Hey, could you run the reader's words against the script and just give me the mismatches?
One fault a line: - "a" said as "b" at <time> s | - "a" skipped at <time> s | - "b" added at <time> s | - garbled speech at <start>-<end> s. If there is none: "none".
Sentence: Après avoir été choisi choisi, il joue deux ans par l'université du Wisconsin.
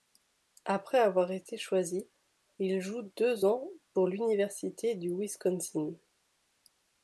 - "choisi" skipped at 2.1 s
- "par" said as "pour" at 3.9 s